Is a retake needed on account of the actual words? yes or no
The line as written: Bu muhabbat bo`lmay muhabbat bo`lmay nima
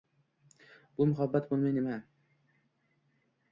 yes